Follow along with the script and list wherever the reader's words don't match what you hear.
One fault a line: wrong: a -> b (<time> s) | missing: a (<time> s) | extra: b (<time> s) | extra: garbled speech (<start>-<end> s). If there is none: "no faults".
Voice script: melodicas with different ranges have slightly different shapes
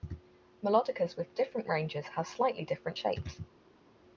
no faults